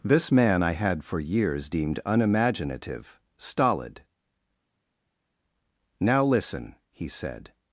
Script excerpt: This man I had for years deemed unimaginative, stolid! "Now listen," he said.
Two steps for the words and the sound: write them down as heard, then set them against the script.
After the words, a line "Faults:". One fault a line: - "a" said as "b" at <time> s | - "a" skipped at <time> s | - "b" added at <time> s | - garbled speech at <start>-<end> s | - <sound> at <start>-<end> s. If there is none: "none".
This man I had for years deemed unimaginative, stolid! "Now listen," he said.
Faults:
none